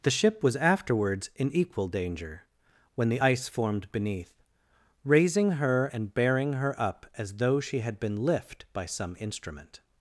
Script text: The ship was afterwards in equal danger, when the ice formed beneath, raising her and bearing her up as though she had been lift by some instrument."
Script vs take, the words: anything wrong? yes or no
no